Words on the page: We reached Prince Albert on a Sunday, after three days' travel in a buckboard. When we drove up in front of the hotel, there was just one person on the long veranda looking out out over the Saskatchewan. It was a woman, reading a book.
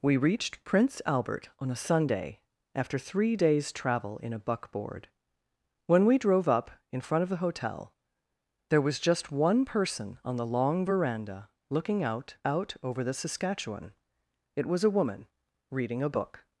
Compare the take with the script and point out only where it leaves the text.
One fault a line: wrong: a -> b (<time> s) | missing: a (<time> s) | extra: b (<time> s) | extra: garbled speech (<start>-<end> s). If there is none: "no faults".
no faults